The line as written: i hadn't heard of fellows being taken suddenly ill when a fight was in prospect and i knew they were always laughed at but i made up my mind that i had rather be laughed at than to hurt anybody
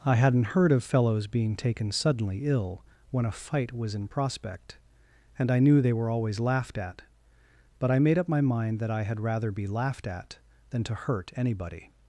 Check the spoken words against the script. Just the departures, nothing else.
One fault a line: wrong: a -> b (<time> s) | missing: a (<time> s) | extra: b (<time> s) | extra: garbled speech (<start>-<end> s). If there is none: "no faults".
no faults